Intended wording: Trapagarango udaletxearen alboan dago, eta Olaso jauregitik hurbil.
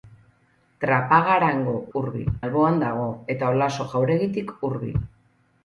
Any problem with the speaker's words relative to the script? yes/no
yes